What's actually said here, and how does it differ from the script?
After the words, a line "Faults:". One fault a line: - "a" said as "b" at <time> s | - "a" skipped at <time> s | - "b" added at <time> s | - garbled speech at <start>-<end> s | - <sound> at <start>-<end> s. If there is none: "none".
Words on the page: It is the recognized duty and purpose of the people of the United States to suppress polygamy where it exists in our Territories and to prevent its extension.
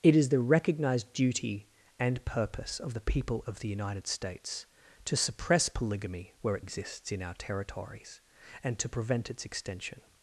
It is the recognized duty and purpose of the people of the United States to suppress polygamy where it exists in our Territories and to prevent its extension.
Faults:
none